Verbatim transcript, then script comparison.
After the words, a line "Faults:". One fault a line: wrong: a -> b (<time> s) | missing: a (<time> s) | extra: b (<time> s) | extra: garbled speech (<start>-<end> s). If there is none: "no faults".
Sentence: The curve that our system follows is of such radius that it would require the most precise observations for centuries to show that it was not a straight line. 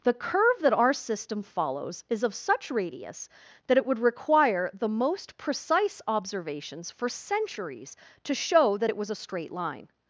The curve that our system follows is of such radius that it would require the most precise observations for centuries to show that it was a straight line.
Faults:
missing: not (9.1 s)